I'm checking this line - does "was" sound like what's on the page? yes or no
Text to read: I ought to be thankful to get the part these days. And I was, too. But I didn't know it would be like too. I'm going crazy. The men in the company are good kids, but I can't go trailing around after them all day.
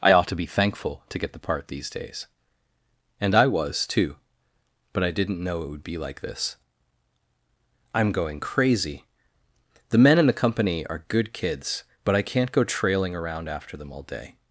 yes